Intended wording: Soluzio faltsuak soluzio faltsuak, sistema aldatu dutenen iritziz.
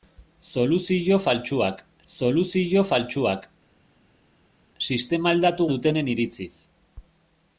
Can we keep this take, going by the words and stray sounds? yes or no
yes